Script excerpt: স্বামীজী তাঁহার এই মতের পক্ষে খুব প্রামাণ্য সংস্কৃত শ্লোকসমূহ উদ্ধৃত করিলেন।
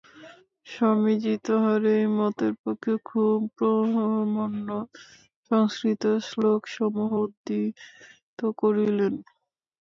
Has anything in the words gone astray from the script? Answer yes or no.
no